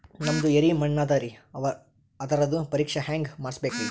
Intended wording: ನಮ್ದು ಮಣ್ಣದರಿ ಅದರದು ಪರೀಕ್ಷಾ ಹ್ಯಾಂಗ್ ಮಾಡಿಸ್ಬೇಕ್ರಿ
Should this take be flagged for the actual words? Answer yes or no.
yes